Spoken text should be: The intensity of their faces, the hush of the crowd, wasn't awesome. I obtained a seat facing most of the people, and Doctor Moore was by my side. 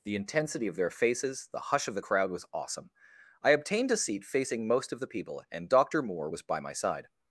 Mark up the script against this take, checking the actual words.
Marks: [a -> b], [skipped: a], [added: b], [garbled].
The intensity of their faces, the hush of the crowd, [wasn't -> was] awesome. I obtained a seat facing most of the people, and Doctor Moore was by my side.